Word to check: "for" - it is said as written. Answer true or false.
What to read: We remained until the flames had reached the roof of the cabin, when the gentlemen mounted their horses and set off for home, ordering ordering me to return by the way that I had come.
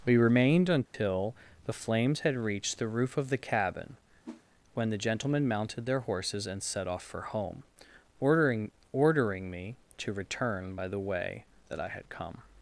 true